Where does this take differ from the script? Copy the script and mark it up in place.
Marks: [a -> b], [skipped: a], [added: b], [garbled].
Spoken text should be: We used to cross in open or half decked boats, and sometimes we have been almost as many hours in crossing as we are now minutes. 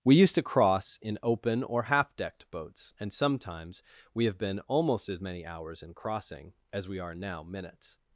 We used to cross in open or half decked boats, and sometimes we have been almost as many hours in crossing as we are now minutes.